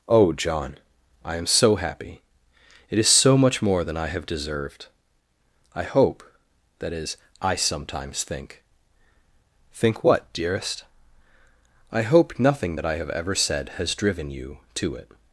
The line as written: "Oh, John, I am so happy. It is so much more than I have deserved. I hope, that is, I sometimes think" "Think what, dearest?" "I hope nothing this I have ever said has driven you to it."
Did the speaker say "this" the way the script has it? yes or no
no